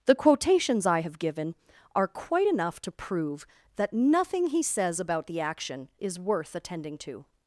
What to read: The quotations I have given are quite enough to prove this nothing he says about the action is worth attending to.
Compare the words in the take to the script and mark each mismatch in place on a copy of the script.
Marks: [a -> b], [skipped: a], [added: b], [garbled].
The quotations I have given are quite enough to prove [this -> that] nothing he says about the action is worth attending to.